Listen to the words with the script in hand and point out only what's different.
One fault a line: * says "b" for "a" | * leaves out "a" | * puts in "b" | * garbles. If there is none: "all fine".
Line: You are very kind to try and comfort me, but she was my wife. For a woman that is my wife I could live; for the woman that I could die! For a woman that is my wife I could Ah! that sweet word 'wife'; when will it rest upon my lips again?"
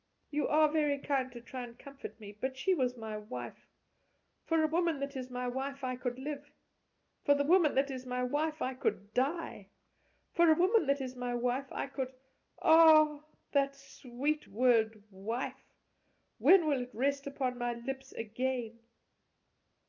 * puts in "is my wife"